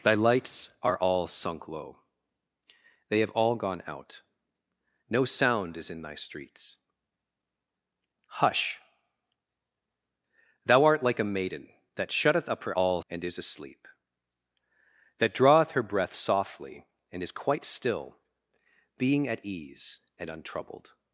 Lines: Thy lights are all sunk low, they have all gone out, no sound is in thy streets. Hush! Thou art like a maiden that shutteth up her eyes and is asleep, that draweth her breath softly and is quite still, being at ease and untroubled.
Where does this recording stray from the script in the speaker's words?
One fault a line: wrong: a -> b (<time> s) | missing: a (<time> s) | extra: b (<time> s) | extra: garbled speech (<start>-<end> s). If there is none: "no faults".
wrong: eyes -> all (12.7 s)